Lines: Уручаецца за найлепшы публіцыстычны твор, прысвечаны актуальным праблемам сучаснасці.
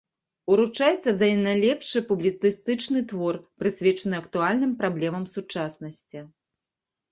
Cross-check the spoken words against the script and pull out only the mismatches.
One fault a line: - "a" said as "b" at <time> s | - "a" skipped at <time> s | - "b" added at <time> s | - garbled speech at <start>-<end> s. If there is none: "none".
none